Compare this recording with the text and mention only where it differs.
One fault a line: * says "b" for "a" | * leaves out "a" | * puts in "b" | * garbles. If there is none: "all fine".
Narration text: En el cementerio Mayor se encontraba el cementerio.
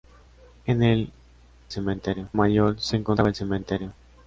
all fine